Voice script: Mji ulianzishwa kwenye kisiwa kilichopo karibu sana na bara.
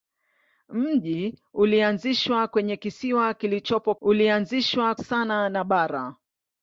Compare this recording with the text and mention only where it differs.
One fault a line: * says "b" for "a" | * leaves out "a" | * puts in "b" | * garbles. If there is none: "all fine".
* says "ulianzishwa" for "karibu"